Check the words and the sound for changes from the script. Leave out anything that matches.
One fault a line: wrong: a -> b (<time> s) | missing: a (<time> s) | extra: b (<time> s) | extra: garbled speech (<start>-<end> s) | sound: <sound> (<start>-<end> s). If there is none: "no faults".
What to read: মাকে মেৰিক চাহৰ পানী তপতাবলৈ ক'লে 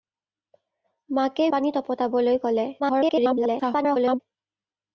missing: মেৰিক চাহৰ (1.5 s)
extra: garbled speech (2.8-4.2 s)